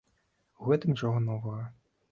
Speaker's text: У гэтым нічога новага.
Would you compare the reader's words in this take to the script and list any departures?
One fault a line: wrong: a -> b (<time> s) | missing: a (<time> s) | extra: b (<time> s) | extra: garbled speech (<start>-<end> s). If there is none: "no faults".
no faults